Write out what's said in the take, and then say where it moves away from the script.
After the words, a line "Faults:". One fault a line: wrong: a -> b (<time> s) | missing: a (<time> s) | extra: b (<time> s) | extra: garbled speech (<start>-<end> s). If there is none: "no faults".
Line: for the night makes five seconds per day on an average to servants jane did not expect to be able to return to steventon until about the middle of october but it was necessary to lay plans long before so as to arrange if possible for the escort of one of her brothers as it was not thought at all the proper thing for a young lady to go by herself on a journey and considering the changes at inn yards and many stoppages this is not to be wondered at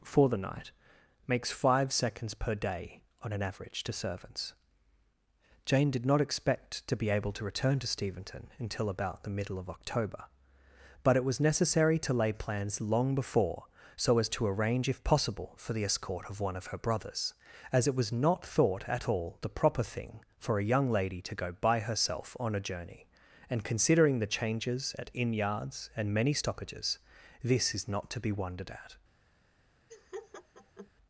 for the night makes five seconds per day on an average to servants jane did not expect to be able to return to steventon until about the middle of october but it was necessary to lay plans long before so as to arrange if possible for the escort of one of her brothers as it was not thought at all the proper thing for a young lady to go by herself on a journey and considering the changes at inn yards and many stoppages this is not to be wondered at
Faults:
no faults